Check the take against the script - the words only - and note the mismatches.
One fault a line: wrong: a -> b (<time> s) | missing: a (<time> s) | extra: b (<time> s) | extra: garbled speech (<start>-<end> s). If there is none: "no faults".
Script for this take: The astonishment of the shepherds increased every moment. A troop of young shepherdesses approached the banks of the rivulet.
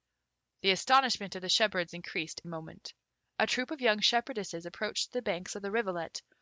missing: every (2.4 s)